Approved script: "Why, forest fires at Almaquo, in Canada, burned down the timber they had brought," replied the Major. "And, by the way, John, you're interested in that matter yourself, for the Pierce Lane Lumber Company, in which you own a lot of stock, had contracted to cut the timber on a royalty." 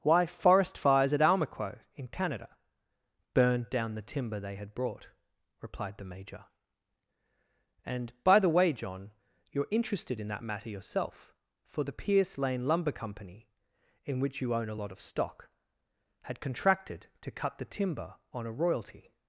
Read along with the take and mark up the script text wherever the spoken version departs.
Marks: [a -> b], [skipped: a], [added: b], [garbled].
"Why, forest fires at Almaquo, in Canada, burned down the timber they had brought," replied the Major. "And, by the way, John, you're interested in that matter yourself, for the Pierce Lane Lumber Company, in which you own a lot of stock, had contracted to cut the timber on a royalty."